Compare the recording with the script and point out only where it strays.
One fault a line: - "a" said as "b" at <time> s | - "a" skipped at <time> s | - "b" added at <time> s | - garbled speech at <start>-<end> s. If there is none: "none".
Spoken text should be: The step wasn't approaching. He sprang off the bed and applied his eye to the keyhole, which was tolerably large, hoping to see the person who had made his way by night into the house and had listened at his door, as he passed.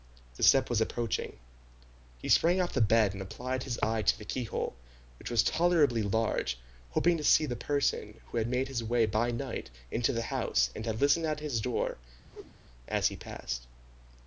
- "wasn't" said as "was" at 0.7 s